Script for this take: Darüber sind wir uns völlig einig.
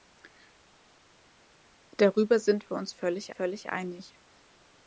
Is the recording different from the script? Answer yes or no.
yes